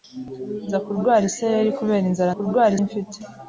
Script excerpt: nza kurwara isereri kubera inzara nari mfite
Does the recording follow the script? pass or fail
fail